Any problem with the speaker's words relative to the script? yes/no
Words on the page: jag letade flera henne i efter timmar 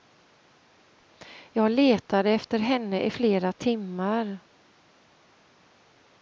yes